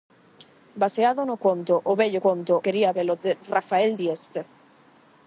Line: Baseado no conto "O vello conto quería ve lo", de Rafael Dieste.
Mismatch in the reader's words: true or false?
false